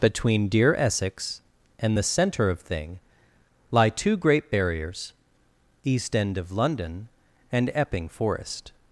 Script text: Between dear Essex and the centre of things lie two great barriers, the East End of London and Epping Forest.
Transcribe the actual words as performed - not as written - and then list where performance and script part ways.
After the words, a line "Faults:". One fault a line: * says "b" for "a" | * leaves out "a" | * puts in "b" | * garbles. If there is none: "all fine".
Between dear Essex and the centre of thing lie two great barriers, East End of London and Epping Forest.
Faults:
* says "thing" for "things"
* leaves out "the"